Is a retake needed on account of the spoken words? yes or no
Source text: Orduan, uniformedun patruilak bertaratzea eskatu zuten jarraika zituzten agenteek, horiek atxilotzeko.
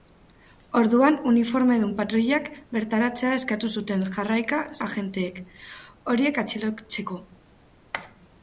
yes